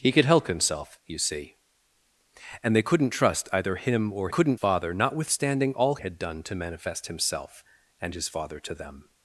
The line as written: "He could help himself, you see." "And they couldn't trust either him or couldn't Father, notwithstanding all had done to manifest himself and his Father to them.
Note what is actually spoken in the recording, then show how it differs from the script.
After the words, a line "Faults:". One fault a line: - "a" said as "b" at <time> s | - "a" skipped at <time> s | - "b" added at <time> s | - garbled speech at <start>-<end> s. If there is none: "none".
"He could help himself, you see." "And they couldn't trust either him or couldn't Father, notwithstanding all had done to manifest himself and his Father to them.
Faults:
none